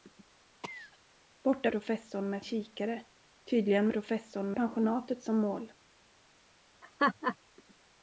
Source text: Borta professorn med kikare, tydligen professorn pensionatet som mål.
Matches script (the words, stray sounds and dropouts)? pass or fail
fail